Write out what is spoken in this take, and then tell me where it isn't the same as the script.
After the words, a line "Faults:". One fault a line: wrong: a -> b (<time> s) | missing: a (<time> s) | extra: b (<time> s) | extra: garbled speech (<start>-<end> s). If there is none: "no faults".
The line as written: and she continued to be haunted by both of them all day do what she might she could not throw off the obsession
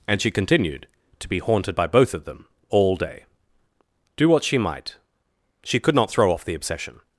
and she continued to be haunted by both of them all day do what she might she could not throw off the obsession
Faults:
no faults